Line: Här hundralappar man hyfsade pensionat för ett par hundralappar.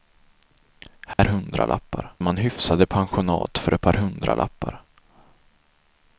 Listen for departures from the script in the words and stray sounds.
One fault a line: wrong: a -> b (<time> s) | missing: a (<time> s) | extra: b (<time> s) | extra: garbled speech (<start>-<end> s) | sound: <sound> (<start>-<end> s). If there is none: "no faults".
sound: dropout (1.1-1.2 s)